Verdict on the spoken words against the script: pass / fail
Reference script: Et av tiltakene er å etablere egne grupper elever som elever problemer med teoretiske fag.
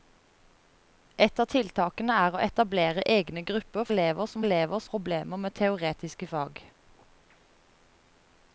pass